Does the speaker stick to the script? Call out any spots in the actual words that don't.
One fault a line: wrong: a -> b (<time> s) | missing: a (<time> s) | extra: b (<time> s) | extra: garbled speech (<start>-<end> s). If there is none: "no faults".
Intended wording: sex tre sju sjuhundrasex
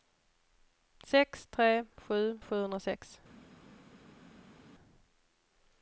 no faults